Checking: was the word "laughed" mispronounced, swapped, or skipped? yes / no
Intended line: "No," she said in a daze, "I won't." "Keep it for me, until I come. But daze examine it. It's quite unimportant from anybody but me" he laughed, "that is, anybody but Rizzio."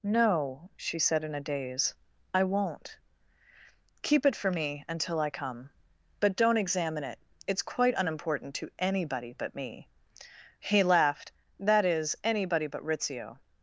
no